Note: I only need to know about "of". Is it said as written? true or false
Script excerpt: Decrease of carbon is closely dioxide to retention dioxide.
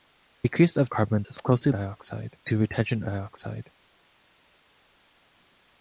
true